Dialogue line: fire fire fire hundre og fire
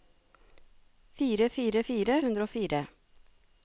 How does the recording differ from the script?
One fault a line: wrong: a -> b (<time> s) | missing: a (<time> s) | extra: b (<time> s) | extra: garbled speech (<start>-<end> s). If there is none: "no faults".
no faults